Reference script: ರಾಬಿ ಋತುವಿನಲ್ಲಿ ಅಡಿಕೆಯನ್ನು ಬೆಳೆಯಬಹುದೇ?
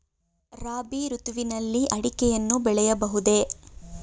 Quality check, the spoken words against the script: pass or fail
pass